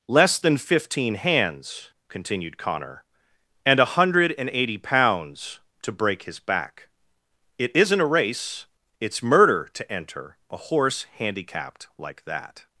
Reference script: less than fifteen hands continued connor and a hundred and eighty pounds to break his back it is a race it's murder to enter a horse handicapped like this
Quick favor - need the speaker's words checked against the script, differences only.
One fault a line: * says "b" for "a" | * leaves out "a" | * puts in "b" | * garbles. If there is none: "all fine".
* says "isn't" for "is"
* says "that" for "this"